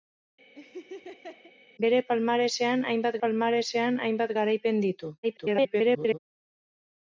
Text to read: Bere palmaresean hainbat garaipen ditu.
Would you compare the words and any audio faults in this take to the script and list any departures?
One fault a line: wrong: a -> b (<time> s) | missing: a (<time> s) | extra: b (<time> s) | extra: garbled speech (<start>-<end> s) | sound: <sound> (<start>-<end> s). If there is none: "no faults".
sound: laugh (0.5-1.5 s)
extra: palmaresean hainbat (3.2 s)
extra: garbled speech (5.2-6.2 s)